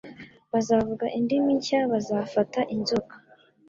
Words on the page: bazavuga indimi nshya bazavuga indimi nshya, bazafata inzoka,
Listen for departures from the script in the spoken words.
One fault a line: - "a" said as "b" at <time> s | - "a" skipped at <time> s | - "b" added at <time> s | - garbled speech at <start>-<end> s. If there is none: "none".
- "bazavuga indimi nshya" skipped at 1.8 s